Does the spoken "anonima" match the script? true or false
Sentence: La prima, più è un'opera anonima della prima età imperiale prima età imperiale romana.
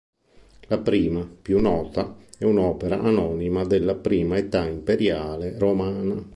true